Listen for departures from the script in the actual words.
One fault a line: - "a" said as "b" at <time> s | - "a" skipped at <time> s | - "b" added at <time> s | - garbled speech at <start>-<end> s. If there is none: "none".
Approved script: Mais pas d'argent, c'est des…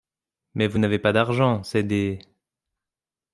- "vous n'avez" added at 0.7 s